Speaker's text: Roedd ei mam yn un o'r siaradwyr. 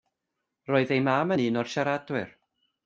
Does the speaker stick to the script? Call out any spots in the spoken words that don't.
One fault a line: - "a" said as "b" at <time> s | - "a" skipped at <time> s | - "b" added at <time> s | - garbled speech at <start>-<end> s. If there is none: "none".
none